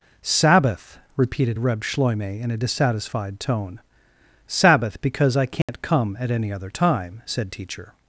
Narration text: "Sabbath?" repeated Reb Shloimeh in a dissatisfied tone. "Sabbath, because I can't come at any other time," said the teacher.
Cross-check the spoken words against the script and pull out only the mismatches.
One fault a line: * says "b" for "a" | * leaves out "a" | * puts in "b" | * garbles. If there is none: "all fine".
* leaves out "the"